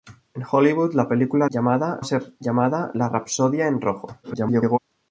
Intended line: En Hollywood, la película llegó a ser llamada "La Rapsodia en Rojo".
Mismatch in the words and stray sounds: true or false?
true